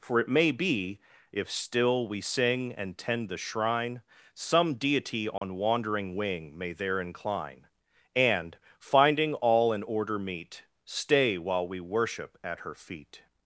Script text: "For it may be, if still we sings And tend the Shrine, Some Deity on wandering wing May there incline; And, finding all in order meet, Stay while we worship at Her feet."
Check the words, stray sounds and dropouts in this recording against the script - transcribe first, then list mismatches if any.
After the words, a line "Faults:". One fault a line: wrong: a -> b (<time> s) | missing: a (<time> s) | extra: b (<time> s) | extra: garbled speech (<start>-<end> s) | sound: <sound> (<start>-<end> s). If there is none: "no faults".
"For it may be, if still we sing And tend the Shrine, Some Deity on wandering wing May there incline; And, finding all in order meet, Stay while we worship at Her feet."
Faults:
wrong: sings -> sing (2.2 s)
sound: dropout (5.4-5.4 s)